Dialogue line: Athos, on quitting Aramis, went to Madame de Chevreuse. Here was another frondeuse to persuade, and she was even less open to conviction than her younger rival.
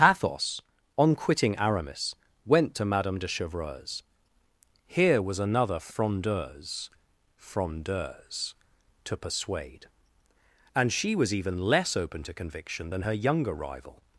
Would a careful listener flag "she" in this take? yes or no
no